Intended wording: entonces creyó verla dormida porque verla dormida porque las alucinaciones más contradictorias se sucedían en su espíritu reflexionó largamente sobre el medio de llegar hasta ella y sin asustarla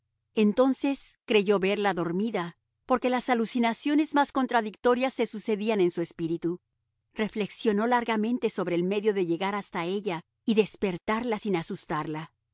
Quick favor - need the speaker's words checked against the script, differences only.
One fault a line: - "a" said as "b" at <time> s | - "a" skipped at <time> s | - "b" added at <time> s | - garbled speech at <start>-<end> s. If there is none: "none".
- "verla dormida porque" skipped at 3.1 s
- "despertarla" added at 10.5 s